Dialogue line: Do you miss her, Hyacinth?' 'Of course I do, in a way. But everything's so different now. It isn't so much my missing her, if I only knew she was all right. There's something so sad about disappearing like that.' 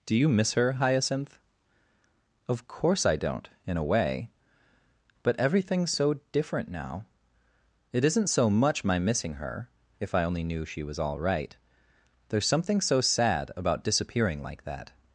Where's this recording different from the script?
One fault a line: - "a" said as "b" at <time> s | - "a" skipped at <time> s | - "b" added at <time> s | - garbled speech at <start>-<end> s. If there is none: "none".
- "do" said as "don't" at 3.1 s